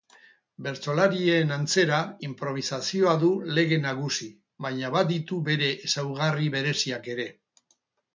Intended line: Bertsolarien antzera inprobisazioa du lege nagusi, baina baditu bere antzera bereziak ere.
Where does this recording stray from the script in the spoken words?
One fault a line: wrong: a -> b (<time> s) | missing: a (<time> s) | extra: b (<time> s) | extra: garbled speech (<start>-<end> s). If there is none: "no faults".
wrong: antzera -> ezaugarri (5.9 s)